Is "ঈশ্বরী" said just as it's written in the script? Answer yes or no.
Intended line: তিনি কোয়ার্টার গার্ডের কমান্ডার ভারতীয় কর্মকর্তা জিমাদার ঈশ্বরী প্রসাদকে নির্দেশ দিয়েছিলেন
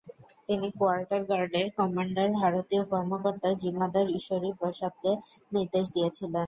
yes